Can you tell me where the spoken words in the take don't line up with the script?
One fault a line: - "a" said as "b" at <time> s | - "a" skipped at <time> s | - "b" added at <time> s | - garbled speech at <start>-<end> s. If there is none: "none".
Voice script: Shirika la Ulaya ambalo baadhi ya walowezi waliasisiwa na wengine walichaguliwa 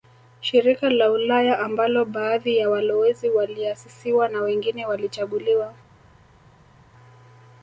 none